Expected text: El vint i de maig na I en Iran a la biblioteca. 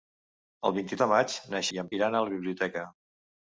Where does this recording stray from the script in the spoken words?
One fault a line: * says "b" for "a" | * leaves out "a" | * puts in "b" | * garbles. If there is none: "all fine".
all fine